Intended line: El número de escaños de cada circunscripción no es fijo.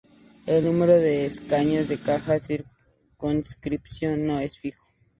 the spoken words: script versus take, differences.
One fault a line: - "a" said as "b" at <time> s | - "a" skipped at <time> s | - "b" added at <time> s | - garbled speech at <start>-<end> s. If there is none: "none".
none